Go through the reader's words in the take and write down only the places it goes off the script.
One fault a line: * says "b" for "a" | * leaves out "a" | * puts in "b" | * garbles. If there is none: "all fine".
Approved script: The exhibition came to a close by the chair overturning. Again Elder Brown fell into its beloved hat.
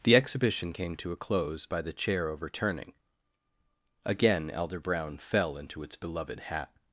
all fine